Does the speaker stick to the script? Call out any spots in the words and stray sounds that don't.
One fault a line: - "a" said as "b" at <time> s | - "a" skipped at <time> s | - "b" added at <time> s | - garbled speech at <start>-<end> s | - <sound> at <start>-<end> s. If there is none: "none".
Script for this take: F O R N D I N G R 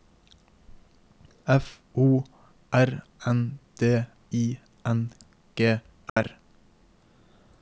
- dropout at 6.1-6.2 s